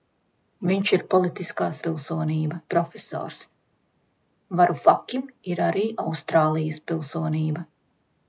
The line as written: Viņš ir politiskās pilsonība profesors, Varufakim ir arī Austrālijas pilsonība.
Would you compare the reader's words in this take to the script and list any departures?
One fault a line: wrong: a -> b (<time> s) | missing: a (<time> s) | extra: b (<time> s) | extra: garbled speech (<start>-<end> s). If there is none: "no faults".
no faults